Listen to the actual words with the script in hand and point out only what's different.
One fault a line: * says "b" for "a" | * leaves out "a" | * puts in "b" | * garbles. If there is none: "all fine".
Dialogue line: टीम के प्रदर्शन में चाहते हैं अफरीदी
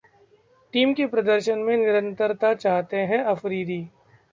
* puts in "निरंतरता"